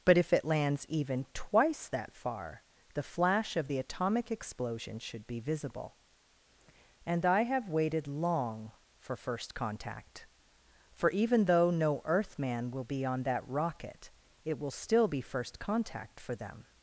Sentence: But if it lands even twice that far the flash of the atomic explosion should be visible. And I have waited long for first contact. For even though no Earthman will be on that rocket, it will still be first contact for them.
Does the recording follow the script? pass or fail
pass